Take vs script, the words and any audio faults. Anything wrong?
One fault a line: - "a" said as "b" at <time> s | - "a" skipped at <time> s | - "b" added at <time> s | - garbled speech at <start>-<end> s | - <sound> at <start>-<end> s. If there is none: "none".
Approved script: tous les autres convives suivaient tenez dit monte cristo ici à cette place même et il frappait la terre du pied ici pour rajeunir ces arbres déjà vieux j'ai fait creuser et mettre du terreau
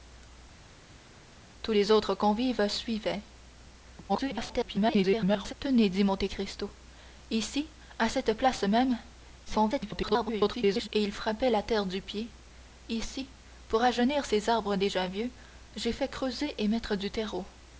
- garbled speech at 4.1-5.5 s
- garbled speech at 9.4-10.9 s